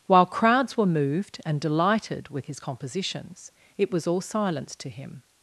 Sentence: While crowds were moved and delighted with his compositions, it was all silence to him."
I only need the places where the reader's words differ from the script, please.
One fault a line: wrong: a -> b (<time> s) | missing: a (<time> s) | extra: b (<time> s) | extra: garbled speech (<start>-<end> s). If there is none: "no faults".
no faults